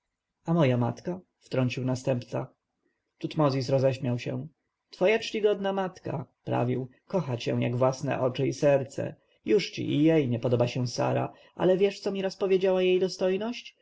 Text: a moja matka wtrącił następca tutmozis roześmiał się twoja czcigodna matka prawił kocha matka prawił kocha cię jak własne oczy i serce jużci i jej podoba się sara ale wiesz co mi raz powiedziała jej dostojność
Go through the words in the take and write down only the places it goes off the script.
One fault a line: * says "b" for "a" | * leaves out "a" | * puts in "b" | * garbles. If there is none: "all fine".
* leaves out "matka prawił kocha"
* puts in "nie"